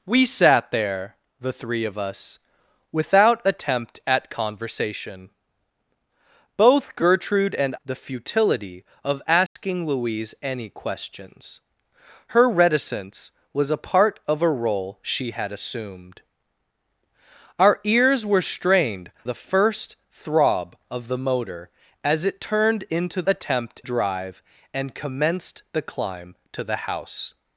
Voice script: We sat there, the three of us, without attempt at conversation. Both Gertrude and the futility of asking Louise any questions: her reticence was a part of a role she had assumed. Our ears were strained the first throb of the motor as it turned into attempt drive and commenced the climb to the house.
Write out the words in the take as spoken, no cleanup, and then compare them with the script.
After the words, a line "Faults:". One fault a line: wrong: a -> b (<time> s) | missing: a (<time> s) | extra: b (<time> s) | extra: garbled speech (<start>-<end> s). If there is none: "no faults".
We sat there, the three of us, without attempt at conversation. Both Gertrude and the futility of asking Louise any questions: her reticence was a part of a role she had assumed. Our ears were strained the first throb of the motor as it turned into attempt drive and commenced the climb to the house.
Faults:
no faults